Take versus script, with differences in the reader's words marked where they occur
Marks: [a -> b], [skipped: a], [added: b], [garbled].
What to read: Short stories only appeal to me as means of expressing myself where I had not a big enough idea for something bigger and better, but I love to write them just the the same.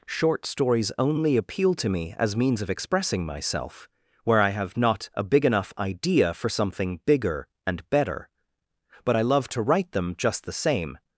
Short stories only appeal to me as means of expressing myself where I [had -> have] not a big enough idea for something bigger and better, but I love to write them just the [skipped: the] same.